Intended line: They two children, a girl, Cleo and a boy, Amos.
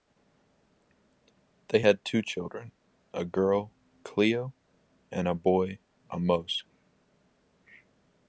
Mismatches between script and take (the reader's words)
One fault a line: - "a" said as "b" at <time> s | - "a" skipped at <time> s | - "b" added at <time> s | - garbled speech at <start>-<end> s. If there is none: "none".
- "had" added at 1.8 s